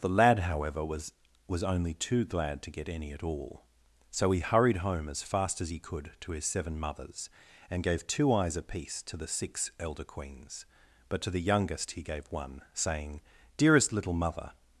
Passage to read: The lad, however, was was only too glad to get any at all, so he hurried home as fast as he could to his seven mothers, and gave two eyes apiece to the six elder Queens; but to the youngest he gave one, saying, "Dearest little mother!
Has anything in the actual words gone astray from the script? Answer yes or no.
no